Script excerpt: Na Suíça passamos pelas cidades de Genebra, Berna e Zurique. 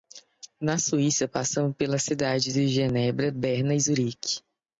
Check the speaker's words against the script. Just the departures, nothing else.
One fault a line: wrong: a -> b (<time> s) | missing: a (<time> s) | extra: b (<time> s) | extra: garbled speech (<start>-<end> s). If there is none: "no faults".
no faults